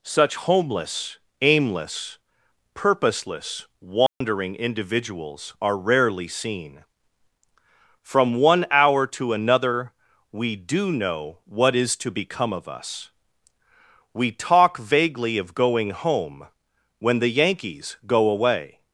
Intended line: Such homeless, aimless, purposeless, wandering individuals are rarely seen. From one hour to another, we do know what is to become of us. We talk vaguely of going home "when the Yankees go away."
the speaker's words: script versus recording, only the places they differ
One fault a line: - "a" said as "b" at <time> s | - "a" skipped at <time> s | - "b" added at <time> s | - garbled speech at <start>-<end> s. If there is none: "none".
none